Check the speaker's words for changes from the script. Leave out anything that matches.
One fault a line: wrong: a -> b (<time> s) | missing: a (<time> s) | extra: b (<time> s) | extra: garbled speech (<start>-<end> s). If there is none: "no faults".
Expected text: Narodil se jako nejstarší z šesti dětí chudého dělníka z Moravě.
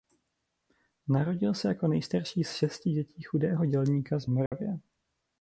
no faults